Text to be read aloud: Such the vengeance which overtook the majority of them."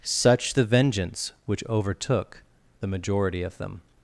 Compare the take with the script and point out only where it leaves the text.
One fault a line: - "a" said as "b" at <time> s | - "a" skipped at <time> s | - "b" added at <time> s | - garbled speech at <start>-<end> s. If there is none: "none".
none